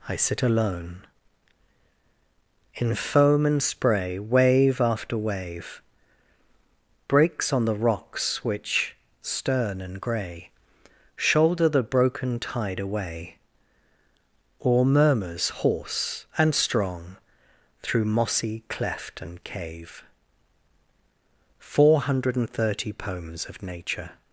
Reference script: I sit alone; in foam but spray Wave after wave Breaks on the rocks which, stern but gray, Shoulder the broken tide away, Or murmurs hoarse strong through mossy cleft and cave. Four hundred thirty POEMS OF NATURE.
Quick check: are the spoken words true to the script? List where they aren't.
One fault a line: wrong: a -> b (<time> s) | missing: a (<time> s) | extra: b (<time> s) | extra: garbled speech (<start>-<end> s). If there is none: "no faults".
wrong: but -> and (3.5 s)
wrong: but -> and (9.8 s)
extra: and (16.4 s)